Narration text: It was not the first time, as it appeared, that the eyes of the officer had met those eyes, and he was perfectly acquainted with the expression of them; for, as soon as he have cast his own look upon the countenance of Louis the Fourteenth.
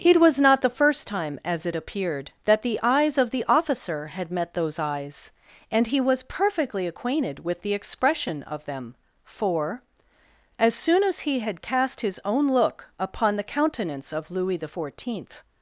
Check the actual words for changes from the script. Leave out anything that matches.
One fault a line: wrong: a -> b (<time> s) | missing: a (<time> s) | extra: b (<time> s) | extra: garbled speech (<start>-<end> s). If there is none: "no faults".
wrong: have -> had (11.4 s)